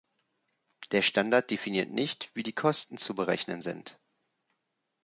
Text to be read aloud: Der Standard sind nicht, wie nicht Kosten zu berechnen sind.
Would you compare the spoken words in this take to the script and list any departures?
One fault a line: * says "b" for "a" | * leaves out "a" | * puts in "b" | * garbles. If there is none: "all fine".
* says "definiert" for "sind"
* says "die" for "nicht"